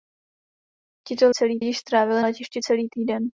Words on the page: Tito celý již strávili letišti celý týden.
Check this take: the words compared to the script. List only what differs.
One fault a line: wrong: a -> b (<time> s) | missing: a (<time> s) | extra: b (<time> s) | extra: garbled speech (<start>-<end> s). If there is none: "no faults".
no faults